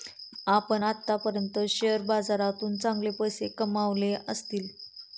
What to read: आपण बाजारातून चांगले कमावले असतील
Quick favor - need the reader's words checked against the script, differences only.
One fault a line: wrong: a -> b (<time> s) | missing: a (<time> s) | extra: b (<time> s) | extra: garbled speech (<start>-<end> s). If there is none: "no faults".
extra: आत्तापर्यंत शेअर (0.8 s)
extra: पैसे (3.1 s)